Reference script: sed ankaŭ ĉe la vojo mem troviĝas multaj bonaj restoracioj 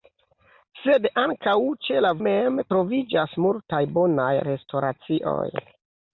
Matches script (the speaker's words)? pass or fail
fail